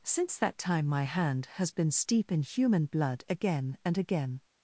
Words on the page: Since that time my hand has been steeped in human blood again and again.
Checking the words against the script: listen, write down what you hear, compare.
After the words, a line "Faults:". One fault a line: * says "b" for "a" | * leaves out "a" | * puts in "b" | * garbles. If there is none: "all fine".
Since that time my hand has been steep in human blood again and again.
Faults:
* says "steep" for "steeped"